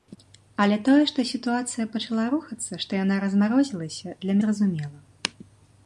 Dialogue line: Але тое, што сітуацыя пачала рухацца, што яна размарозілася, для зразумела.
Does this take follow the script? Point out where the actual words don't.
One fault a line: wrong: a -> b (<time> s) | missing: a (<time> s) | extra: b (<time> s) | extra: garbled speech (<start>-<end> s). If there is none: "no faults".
no faults